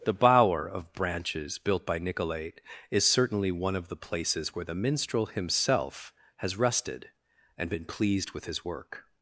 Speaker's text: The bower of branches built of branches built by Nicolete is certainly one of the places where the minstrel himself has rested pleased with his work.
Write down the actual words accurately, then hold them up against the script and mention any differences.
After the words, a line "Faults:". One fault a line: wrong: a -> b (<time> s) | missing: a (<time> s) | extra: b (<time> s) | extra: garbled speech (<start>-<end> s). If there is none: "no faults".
The bower of branches built by Nicolete is certainly one of the places where the minstrel himself has rested and been pleased with his work.
Faults:
missing: of branches built (1.9 s)
extra: and been (7.6 s)